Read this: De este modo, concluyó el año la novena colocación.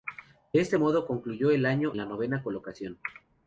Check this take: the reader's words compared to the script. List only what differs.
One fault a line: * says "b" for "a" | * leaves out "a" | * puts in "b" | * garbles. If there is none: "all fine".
all fine